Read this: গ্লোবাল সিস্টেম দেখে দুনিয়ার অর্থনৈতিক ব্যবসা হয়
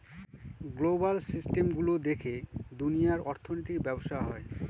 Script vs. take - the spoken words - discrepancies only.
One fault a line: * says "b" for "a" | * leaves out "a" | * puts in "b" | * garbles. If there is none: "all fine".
* puts in "গুলো"